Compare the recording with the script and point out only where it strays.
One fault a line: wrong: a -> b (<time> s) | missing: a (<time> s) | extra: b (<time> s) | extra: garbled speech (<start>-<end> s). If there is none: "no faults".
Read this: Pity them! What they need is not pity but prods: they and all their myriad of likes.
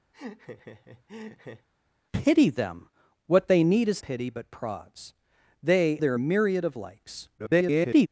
missing: not (4.0 s)
missing: and all (6.0 s)
extra: garbled speech (7.4-8.1 s)